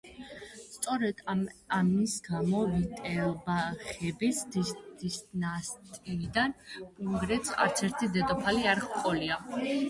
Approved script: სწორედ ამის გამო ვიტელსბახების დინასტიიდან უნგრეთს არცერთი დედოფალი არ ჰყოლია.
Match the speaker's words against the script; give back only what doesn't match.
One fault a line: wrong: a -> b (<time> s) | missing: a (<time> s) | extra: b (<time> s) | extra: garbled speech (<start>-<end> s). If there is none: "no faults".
no faults